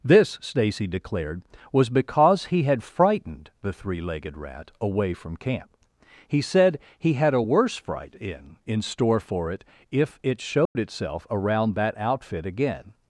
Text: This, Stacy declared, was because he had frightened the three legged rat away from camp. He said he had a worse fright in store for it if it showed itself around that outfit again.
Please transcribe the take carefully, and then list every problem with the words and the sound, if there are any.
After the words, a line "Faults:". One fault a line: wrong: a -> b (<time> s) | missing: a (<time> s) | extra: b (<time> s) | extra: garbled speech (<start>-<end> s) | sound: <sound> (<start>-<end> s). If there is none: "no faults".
This, Stacy declared, was because he had frightened the three legged rat away from camp. He said he had a worse fright in in store for it if it showed itself around that outfit again.
Faults:
extra: in (8.7 s)
sound: dropout (10.7-10.8 s)